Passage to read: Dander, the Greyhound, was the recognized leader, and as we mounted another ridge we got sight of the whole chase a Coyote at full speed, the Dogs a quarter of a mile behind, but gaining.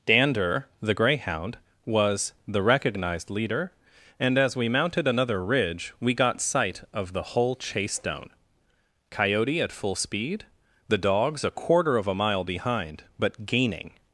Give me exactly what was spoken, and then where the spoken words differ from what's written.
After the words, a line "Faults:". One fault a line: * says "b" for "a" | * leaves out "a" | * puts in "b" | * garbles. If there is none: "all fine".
Dander, the Greyhound, was the recognized leader, and as we mounted another ridge we got sight of the whole chase down Coyote at full speed, the Dogs a quarter of a mile behind, but gaining.
Faults:
* says "down" for "a"